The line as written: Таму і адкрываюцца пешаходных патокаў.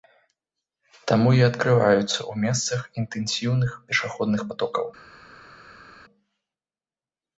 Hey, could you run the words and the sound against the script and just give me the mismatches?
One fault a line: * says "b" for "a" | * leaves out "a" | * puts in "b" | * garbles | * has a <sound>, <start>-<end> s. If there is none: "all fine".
* puts in "ў месцах інтэнсіўных"